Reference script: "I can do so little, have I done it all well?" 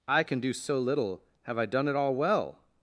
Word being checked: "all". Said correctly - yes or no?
yes